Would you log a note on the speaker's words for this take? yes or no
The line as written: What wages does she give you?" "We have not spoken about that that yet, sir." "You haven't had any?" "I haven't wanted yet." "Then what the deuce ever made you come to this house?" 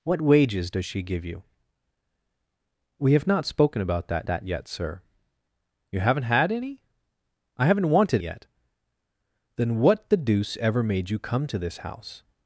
no